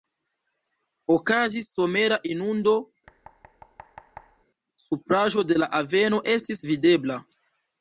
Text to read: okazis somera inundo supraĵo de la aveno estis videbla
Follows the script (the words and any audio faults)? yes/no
no